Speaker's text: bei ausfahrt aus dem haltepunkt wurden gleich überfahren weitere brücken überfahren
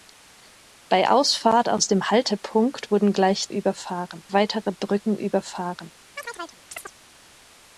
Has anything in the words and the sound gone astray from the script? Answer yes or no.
yes